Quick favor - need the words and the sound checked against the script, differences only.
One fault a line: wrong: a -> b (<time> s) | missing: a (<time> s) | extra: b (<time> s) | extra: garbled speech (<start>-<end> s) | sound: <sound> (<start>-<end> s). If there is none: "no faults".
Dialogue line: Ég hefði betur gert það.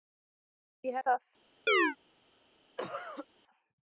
missing: hefði betur gert (1.0 s)
sound: chirp (1.7-2.0 s)
sound: cough (2.8-3.3 s)